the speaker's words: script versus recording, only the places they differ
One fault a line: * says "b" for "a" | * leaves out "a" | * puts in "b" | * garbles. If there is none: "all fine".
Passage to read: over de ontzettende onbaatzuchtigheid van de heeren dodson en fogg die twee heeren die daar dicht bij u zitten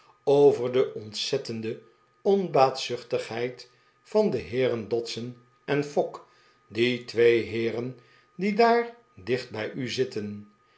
all fine